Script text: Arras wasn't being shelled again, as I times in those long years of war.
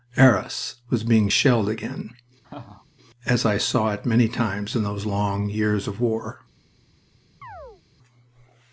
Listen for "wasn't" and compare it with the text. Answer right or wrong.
wrong